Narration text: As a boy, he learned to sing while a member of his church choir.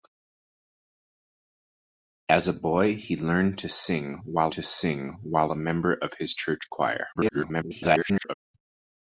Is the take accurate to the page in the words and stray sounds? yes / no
no